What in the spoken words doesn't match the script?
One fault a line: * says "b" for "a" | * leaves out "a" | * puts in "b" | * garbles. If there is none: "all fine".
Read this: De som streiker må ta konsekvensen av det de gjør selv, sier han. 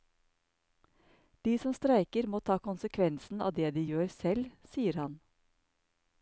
all fine